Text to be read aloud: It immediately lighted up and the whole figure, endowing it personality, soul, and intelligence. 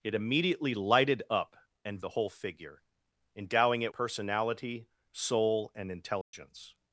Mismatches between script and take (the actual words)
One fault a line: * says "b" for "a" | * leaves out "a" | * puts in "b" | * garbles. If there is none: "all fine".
all fine